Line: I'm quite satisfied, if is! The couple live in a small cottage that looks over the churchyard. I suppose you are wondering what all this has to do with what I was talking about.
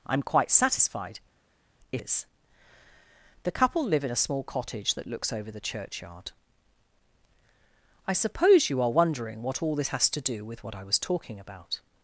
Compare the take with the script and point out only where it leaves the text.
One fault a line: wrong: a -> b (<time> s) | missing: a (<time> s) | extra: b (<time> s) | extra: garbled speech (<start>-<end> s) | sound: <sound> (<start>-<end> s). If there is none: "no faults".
no faults